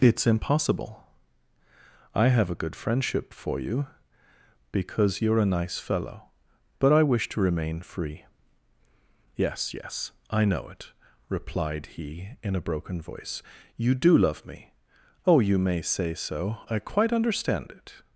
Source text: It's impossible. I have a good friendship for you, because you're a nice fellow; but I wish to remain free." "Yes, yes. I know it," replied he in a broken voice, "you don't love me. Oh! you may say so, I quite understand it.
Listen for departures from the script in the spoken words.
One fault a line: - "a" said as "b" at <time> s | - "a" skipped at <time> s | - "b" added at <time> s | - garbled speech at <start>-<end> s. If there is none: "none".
- "don't" said as "do" at 13.9 s